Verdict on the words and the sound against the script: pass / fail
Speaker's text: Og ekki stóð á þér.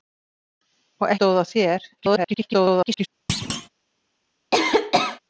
fail